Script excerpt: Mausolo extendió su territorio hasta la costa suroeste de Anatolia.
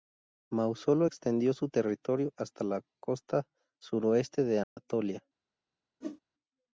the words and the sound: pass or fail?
fail